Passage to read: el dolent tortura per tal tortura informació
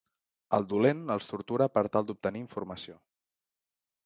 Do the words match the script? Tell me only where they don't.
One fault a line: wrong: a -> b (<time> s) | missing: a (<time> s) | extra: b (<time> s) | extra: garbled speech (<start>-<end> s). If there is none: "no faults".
extra: els (1.1 s)
wrong: tortura -> d'obtenir (2.1 s)